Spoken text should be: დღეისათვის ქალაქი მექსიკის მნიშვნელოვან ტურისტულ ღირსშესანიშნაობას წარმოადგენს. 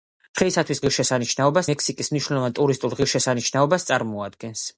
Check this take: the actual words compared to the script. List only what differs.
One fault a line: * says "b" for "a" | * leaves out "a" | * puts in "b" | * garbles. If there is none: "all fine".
* says "ღირსშესანიშნაობას" for "ქალაქი"